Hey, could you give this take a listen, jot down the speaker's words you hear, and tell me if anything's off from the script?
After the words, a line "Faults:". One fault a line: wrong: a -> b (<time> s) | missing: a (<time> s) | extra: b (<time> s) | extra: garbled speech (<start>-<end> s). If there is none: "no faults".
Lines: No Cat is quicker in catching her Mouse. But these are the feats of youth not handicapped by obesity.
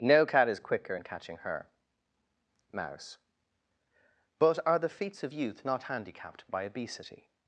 No Cat is quicker in catching her Mouse. But are the feats of youth not handicapped by obesity.
Faults:
missing: these (4.6 s)